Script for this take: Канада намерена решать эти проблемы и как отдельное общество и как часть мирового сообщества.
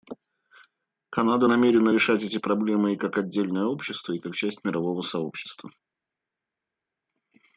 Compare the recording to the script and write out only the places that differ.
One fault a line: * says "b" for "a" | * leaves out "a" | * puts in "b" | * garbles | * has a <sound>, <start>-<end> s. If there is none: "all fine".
all fine